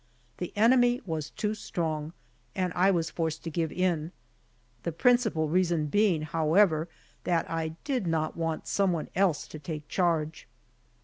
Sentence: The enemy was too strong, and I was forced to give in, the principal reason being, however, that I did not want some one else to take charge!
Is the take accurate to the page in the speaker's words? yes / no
yes